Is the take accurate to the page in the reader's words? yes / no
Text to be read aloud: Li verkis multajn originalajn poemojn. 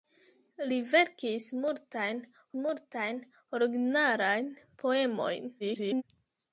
no